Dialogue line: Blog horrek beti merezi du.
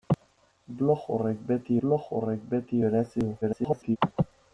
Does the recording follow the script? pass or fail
fail